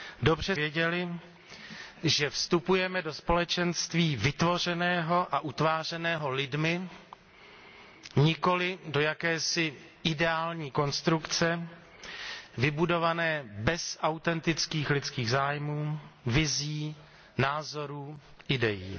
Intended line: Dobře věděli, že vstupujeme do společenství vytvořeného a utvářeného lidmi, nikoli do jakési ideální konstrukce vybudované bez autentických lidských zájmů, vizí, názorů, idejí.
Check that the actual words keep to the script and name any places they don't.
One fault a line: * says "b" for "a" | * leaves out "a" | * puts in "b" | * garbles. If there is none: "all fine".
all fine